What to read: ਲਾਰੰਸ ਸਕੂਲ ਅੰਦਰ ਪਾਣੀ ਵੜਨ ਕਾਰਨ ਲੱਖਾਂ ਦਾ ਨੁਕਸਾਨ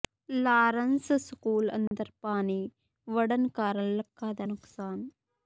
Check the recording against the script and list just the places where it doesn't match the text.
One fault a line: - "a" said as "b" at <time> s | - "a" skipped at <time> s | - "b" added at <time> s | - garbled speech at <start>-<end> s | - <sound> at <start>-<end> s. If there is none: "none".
- dropout at 1.9-1.9 s